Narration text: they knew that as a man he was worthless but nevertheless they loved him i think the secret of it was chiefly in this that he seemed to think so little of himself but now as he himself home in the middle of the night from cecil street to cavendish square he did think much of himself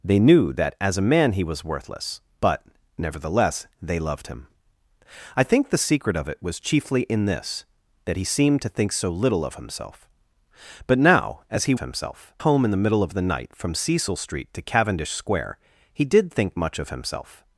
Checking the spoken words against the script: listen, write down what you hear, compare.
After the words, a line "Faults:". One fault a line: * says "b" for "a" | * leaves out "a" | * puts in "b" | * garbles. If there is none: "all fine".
they knew that as a man he was worthless but nevertheless they loved him i think the secret of it was chiefly in this that he seemed to think so little of himself but now as he himself home in the middle of the night from cecil street to cavendish square he did think much of himself
Faults:
all fine